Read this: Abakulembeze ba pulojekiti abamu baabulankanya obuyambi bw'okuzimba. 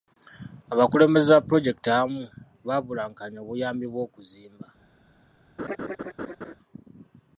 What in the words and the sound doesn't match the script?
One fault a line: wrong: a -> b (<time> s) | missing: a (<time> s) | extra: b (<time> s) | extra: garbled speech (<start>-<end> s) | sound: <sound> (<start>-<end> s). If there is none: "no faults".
sound: laugh (5.6-6.5 s)